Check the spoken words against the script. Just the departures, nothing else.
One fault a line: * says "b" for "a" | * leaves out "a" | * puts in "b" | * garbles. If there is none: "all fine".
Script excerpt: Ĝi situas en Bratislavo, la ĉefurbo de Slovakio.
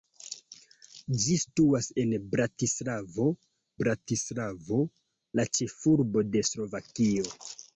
* puts in "Bratislavo"